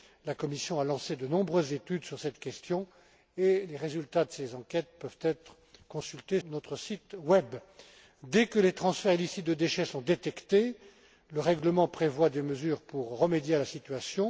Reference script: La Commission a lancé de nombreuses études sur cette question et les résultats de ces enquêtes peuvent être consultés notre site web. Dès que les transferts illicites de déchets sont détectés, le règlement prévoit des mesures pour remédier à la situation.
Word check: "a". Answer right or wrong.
right